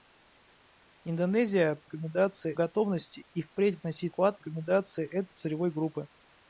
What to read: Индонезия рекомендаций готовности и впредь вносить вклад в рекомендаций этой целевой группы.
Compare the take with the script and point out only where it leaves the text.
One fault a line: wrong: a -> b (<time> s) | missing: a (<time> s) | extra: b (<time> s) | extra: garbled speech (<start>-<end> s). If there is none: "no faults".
no faults